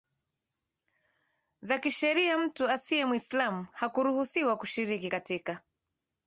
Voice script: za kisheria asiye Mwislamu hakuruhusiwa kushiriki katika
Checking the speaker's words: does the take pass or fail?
fail